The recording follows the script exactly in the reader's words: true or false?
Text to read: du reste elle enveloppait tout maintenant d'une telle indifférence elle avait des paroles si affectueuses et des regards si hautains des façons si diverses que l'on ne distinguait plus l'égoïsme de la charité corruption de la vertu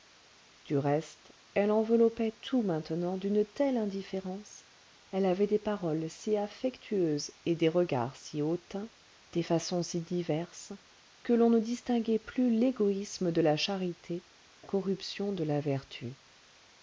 true